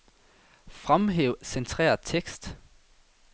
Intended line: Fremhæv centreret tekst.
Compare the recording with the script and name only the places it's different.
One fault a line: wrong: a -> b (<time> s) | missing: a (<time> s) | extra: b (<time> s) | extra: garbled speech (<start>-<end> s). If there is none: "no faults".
no faults